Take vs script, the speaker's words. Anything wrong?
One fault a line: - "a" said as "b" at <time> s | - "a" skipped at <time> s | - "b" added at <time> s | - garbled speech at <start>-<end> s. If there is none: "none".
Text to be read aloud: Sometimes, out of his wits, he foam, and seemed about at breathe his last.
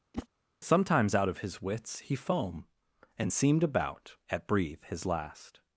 none